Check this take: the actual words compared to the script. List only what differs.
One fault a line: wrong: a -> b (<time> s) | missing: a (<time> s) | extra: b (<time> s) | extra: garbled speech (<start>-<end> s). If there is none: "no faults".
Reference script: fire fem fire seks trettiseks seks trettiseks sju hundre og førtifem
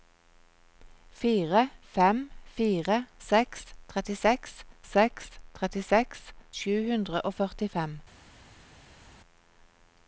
no faults